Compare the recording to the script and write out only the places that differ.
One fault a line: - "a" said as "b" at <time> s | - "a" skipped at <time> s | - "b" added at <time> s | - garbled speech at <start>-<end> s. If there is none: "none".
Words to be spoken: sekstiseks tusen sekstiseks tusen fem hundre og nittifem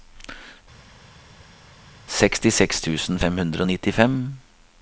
- "sekstiseks tusen" skipped at 3.2 s